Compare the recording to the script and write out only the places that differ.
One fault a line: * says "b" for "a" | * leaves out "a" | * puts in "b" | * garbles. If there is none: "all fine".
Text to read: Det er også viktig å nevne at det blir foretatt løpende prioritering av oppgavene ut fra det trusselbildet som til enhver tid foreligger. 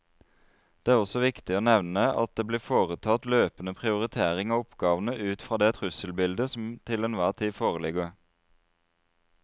all fine